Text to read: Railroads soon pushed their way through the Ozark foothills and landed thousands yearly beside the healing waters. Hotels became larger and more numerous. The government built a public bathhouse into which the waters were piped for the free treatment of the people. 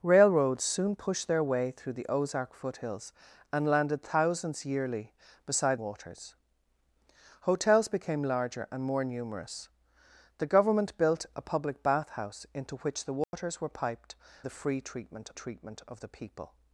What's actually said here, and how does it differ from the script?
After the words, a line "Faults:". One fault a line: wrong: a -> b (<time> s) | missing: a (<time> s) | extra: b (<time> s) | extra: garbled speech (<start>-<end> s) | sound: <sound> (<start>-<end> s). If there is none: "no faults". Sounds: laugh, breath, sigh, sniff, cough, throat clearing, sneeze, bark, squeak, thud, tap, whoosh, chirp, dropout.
Railroads soon pushed their way through the Ozark foothills and landed thousands yearly beside waters. Hotels became larger and more numerous. The government built a public bathhouse into which the waters were piped the free treatment treatment of the people.
Faults:
missing: the healing (5.8 s)
sound: dropout (13.2-13.3 s)
missing: for (14.2 s)
extra: treatment (15.3 s)